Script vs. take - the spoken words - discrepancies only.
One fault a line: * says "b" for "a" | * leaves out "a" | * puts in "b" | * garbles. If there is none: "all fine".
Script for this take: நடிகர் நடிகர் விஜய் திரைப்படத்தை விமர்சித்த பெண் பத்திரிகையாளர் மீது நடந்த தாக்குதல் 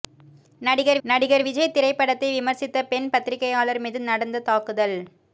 all fine